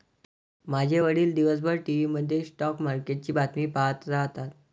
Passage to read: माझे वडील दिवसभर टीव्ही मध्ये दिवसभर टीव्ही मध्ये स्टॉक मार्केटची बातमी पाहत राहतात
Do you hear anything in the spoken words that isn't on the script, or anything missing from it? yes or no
yes